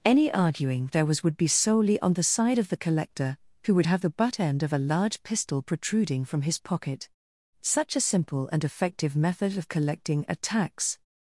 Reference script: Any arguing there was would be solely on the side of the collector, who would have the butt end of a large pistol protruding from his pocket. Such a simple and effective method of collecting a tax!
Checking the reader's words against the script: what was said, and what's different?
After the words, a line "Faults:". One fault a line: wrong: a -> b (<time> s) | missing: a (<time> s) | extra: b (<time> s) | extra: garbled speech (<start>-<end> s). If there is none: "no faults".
Any arguing there was would be solely on the side of the collector, who would have the butt end of a large pistol protruding from his pocket. Such a simple and effective method of collecting a tax!
Faults:
no faults